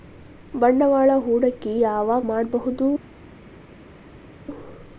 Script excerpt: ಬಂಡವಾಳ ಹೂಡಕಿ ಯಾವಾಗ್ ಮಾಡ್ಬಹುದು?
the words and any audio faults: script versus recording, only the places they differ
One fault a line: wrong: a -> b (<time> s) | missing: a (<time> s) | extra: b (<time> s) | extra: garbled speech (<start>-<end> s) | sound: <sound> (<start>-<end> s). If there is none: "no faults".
no faults